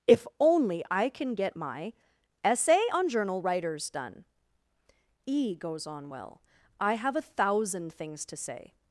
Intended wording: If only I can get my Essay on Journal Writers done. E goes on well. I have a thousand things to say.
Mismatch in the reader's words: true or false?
false